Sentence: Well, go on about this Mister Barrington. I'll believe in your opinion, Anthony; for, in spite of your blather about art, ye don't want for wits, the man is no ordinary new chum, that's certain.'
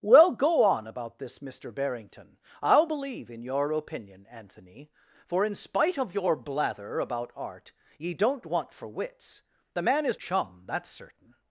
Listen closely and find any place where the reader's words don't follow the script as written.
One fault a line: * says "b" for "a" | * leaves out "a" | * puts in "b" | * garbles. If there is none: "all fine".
* leaves out "no ordinary new"